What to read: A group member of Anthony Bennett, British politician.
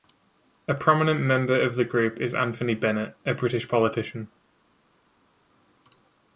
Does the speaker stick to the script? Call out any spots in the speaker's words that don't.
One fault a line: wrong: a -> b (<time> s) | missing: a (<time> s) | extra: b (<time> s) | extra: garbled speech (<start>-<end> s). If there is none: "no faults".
wrong: group -> prominent (0.7 s)
extra: the group is (1.8 s)
extra: a (3.2 s)